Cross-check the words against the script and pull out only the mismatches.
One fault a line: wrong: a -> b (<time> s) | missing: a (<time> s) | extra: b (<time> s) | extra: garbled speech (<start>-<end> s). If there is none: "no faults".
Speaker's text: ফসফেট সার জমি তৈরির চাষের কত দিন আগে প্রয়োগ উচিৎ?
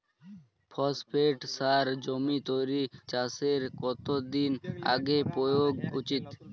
no faults